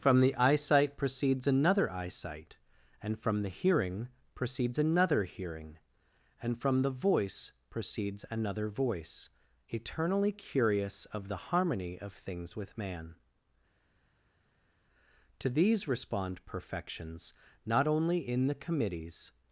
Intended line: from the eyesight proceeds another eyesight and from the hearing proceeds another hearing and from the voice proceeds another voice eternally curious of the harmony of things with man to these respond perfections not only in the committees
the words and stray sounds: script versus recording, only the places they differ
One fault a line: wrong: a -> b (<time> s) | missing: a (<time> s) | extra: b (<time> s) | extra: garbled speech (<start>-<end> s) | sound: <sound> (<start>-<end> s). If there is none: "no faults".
no faults